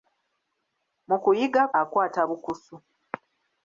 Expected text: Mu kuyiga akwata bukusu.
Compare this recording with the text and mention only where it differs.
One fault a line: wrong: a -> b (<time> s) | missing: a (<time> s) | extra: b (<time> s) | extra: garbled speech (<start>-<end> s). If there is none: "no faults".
no faults